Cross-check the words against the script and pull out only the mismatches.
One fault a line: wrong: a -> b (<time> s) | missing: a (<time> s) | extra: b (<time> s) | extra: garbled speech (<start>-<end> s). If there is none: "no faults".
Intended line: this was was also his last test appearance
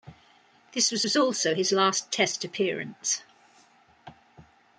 no faults